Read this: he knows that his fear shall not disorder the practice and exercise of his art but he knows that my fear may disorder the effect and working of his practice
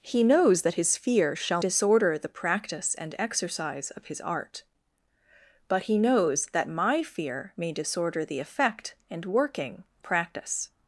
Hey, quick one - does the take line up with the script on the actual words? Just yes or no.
no